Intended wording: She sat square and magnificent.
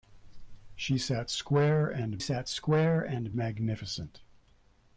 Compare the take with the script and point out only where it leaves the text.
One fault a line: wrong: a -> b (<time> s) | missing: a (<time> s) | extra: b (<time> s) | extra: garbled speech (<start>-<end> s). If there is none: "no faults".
extra: sat square and (2.2 s)